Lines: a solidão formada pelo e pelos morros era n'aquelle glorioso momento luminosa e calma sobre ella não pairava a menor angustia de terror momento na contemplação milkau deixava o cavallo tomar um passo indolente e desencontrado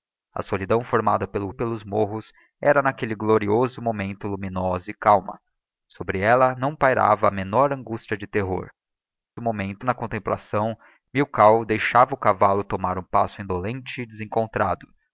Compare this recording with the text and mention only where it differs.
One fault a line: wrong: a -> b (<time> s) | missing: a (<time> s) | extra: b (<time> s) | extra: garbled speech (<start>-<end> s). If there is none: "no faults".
no faults